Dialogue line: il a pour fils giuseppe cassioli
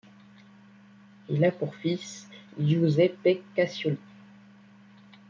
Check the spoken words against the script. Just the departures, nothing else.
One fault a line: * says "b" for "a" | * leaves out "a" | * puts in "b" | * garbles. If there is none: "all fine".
all fine